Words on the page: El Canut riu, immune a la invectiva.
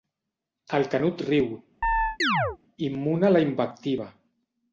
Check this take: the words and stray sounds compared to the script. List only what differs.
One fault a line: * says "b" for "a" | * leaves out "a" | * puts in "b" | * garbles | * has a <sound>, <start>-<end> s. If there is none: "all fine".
* has a chirp, 1.8-2.6 s